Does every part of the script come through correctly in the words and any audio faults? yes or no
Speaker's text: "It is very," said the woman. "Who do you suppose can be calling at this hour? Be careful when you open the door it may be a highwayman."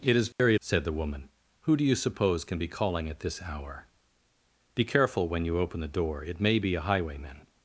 no